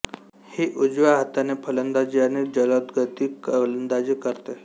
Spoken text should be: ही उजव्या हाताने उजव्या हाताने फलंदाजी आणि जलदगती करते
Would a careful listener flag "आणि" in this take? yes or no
no